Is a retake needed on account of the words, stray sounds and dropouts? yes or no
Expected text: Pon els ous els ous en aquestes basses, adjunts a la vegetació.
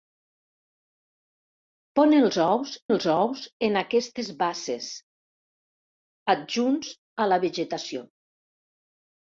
no